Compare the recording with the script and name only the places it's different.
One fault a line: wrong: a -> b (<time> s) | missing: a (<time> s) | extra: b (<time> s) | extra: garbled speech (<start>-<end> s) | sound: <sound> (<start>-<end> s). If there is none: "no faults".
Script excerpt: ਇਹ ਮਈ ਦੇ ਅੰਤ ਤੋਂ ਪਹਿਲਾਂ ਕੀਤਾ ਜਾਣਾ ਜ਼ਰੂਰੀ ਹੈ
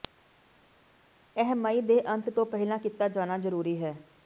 no faults